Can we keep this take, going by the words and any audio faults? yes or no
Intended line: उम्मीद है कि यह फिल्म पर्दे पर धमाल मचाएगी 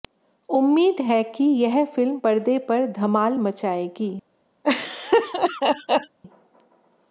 no